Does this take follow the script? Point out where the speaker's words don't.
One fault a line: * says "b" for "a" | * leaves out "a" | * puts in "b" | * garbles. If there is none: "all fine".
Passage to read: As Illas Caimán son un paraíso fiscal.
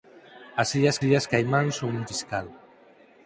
* puts in "Illas"
* leaves out "paraíso"